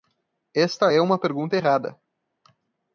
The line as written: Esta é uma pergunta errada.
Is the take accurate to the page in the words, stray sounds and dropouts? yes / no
yes